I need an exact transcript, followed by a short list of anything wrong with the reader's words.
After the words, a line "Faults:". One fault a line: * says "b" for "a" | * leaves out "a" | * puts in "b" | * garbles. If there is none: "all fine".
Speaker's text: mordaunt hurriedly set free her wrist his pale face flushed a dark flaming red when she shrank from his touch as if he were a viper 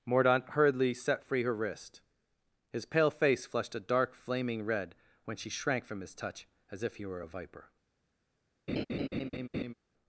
mordaunt hurriedly set free her wrist his pale face flushed a dark flaming red when she shrank from his touch as if he were a viper
Faults:
all fine